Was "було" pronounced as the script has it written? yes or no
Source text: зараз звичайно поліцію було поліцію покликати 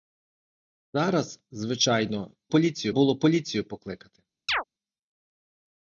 yes